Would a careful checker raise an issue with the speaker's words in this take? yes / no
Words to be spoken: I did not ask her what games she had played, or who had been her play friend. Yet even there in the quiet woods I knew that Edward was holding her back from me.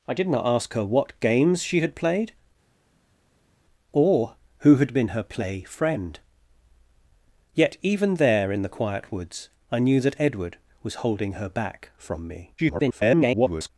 yes